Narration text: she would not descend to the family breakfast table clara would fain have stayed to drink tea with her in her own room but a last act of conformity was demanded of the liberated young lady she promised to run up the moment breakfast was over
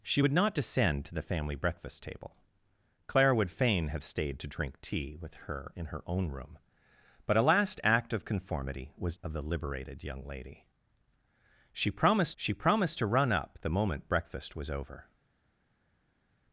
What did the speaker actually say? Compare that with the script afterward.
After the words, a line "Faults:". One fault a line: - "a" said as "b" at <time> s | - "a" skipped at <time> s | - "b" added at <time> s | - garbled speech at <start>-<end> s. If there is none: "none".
she would not descend to the family breakfast table clara would fain have stayed to drink tea with her in her own room but a last act of conformity was of the liberated young lady she promised she promised to run up the moment breakfast was over
Faults:
- "demanded" skipped at 9.2 s
- "she promised" added at 12.4 s